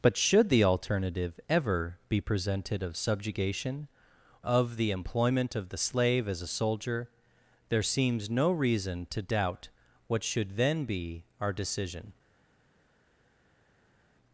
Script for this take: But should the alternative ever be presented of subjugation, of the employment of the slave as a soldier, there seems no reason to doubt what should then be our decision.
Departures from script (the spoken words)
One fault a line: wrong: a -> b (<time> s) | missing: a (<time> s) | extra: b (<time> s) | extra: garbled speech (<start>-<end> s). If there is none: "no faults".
no faults